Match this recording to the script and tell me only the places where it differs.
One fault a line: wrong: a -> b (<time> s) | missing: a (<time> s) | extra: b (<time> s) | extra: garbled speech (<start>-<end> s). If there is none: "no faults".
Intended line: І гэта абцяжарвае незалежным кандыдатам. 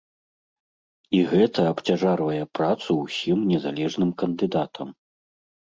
extra: працу ўсім (2.6 s)